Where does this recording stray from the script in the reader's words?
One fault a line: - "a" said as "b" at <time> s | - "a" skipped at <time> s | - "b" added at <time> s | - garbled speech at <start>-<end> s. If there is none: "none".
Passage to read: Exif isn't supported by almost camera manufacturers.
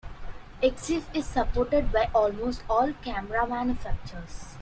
- "isn't" said as "is" at 1.1 s
- "all" added at 2.7 s